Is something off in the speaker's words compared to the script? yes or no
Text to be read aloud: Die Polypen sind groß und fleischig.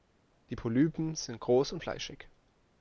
no